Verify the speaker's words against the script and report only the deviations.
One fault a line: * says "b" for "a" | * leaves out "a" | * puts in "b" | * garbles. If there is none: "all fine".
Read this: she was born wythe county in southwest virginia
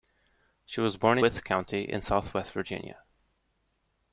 all fine